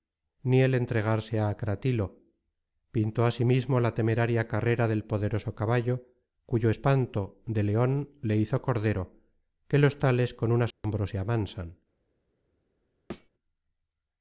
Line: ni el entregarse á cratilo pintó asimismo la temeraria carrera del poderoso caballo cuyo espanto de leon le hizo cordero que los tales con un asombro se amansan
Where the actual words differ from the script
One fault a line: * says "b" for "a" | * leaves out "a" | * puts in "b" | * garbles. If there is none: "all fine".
all fine